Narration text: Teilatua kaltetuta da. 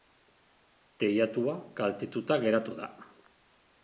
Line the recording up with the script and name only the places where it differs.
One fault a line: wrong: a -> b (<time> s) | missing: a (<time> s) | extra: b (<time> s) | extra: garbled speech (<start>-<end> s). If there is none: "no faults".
extra: geratu (2.5 s)